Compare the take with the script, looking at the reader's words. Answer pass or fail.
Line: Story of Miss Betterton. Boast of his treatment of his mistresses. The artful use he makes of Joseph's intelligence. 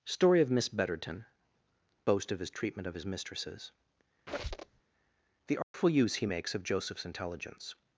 pass